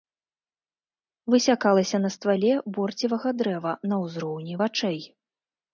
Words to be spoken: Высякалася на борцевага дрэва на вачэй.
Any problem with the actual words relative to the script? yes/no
yes